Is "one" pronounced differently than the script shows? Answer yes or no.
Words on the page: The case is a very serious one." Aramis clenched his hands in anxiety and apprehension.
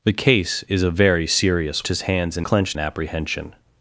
yes